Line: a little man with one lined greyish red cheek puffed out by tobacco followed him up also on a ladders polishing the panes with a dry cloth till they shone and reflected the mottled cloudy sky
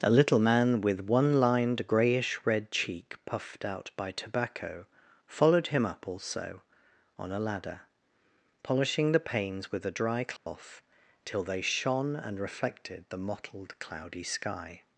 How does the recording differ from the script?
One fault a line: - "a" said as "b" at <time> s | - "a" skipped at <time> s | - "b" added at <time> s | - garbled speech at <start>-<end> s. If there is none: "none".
- "ladders" said as "ladder" at 7.4 s